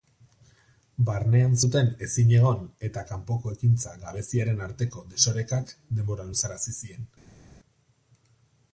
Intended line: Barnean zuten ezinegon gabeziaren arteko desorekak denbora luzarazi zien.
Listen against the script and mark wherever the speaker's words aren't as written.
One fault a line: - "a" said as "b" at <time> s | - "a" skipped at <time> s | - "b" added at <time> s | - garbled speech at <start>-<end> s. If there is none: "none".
- "eta kanpoko ekintza" added at 2.9 s